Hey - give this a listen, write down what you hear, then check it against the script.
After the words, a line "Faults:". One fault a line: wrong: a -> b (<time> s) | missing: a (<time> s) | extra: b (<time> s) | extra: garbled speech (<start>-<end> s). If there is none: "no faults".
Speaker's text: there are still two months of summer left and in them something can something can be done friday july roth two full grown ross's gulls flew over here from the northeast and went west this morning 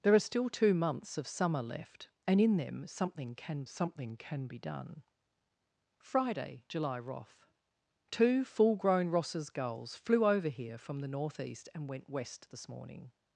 there are still two months of summer left and in them something can something can be done friday july roth two full grown ross's gulls flew over here from the northeast and went west this morning
Faults:
no faults